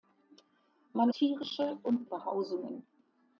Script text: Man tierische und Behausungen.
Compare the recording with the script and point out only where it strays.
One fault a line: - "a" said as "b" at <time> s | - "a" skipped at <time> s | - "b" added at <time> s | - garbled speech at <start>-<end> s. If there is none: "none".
none